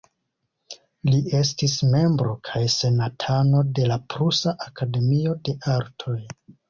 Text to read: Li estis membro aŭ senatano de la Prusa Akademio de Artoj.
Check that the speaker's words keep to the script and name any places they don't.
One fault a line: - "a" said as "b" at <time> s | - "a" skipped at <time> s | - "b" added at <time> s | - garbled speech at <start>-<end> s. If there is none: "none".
- "aŭ" said as "kaj" at 2.5 s